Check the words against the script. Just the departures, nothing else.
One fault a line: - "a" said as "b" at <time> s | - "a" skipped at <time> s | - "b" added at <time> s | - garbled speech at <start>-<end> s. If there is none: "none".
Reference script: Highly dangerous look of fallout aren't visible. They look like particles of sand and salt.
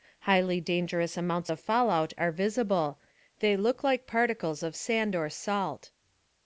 - "look" said as "amounts" at 1.1 s
- "aren't" said as "are" at 2.2 s
- "and" said as "or" at 5.1 s